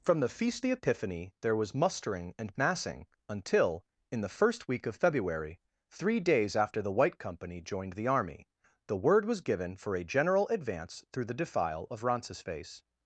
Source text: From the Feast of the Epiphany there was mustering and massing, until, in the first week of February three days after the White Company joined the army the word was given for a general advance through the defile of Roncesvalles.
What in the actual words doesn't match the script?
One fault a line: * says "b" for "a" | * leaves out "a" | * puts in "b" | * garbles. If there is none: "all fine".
* leaves out "of"